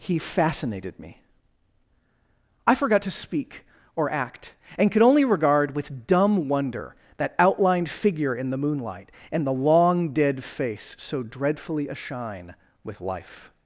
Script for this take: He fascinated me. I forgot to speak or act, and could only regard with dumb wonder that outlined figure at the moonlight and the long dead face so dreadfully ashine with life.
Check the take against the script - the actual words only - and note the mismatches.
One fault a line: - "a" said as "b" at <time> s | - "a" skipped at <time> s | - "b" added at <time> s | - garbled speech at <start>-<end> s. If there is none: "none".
- "at" said as "in" at 8.3 s